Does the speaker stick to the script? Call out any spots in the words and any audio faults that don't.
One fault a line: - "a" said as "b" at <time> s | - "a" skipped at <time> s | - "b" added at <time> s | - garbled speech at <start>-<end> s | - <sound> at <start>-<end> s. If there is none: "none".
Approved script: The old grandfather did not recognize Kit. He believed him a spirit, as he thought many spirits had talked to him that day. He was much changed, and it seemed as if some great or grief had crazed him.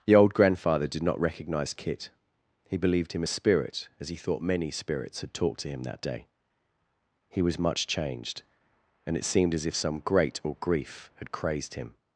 none